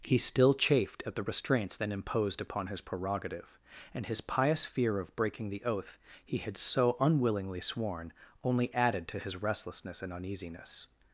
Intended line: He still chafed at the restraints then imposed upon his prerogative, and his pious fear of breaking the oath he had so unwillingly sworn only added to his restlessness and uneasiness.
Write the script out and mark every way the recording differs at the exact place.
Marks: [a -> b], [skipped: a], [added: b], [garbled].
He still chafed at the restraints then imposed upon his prerogative, and his pious fear of breaking the oath he had so unwillingly sworn only added to his restlessness and uneasiness.